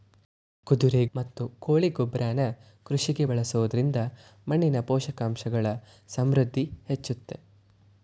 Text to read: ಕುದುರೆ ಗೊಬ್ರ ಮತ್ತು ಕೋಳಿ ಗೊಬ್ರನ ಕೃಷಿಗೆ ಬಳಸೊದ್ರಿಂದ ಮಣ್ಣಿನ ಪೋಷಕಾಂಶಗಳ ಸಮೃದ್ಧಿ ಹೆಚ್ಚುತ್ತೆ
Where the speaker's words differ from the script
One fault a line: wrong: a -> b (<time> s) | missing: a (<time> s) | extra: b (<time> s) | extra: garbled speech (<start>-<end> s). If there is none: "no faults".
missing: ಗೊಬ್ರ (1.1 s)